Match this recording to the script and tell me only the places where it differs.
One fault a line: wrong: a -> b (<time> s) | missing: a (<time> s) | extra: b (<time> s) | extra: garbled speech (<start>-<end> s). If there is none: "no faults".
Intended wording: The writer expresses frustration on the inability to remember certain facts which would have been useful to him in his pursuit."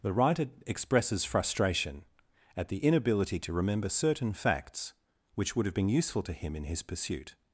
wrong: on -> at (2.6 s)